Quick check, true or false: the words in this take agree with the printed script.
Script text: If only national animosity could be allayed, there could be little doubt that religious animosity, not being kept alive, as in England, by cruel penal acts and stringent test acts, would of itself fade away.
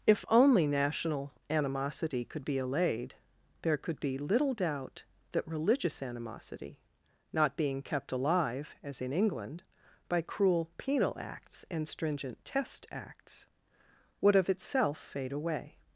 true